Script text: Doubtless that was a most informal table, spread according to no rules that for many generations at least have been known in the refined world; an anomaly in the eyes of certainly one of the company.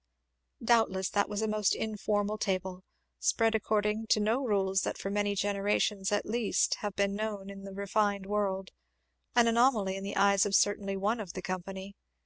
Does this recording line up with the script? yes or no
yes